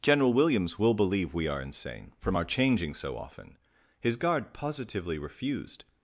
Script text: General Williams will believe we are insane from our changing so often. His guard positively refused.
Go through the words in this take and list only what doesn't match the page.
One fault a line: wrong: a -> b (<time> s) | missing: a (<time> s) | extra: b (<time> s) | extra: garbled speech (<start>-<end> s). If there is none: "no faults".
no faults